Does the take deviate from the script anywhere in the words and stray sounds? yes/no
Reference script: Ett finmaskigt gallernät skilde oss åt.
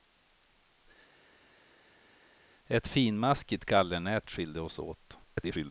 yes